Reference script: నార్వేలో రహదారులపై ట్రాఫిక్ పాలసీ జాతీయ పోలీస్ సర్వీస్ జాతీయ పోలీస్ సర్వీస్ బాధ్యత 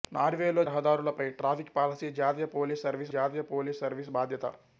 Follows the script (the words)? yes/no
yes